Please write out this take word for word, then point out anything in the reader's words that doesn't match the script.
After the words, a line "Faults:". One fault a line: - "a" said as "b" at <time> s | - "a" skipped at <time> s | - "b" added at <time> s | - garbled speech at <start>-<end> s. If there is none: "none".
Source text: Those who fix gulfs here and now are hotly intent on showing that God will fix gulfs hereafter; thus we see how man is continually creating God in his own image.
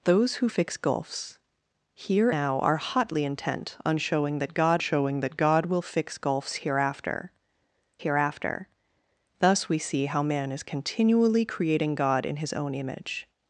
Those who fix gulfs here now are hotly intent on showing that God showing that God will fix gulfs hereafter hereafter; thus we see how man is continually creating God in his own image.
Faults:
- "and" skipped at 2.3 s
- "showing that God" added at 4.8 s
- "hereafter" added at 8.0 s